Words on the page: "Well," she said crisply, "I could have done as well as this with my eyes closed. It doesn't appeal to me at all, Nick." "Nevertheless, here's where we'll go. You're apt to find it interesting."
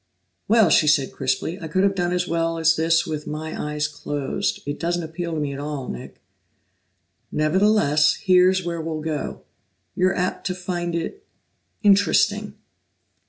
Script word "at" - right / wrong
right